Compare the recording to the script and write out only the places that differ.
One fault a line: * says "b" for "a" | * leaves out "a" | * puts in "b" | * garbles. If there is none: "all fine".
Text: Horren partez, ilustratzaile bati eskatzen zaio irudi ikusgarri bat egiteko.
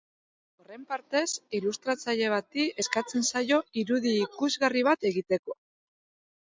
all fine